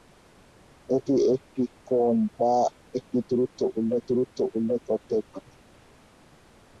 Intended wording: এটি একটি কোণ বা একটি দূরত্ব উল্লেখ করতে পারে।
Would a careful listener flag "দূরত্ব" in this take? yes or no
no